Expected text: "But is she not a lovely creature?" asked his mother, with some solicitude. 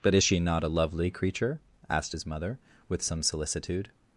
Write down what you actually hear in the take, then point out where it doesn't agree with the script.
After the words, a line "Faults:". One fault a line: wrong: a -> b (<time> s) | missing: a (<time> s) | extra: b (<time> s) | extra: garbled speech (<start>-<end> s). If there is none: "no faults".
"But is she not a lovely creature?" asked his mother, with some solicitude.
Faults:
no faults